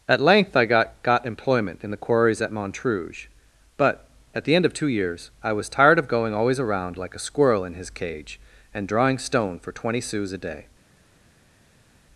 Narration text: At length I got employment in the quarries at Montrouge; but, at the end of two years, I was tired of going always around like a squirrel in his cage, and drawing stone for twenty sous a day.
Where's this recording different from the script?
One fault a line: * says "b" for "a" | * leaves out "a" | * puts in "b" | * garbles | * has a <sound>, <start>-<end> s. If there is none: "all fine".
* puts in "got"